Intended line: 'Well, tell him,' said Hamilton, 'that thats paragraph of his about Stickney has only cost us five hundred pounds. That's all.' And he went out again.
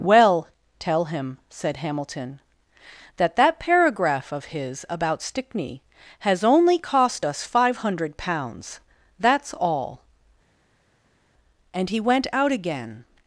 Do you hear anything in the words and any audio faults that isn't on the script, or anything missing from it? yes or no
yes